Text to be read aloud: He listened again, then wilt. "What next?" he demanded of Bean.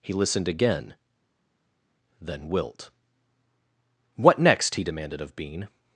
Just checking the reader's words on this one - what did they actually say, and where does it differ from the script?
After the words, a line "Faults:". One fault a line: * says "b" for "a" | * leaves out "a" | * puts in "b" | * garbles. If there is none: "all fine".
He listened again, then wilt. "What next?" he demanded of Bean.
Faults:
all fine